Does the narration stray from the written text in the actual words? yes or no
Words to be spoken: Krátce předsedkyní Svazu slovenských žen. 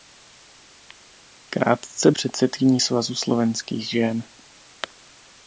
no